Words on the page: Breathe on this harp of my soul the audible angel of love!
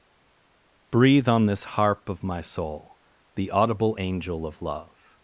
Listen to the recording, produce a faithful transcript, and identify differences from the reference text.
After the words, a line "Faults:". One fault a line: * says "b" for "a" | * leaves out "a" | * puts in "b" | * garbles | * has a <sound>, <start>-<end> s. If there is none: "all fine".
Breathe on this harp of my soul the audible angel of love!
Faults:
all fine